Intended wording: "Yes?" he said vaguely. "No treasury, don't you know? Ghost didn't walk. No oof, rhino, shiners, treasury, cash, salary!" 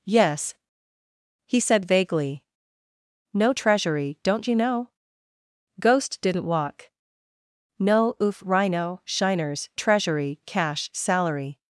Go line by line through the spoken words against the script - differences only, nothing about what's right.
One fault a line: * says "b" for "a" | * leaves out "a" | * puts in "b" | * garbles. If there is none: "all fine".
all fine